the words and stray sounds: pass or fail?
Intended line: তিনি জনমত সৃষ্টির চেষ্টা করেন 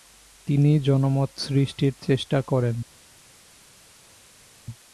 pass